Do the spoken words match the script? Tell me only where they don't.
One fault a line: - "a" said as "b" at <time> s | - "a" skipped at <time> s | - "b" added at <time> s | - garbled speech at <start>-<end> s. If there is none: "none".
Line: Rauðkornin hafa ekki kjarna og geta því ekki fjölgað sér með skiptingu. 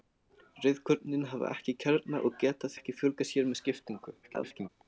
- "því" skipped at 2.7 s
- garbled speech at 4.2-4.7 s